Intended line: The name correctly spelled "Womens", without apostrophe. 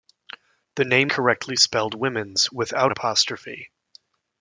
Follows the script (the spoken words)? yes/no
yes